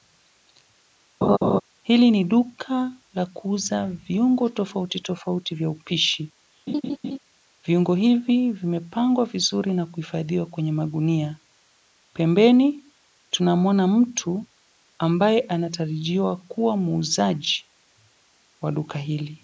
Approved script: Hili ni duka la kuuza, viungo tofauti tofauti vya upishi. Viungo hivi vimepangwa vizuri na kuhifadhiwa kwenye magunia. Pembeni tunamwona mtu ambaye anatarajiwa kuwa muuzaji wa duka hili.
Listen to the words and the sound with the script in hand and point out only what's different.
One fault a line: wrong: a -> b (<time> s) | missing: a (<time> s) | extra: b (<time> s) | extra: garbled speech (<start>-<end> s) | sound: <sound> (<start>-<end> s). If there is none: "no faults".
sound: laugh (1.2-1.6 s)
sound: laugh (6.7-7.2 s)